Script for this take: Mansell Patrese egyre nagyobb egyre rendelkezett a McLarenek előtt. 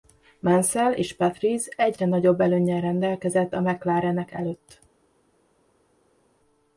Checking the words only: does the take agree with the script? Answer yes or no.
no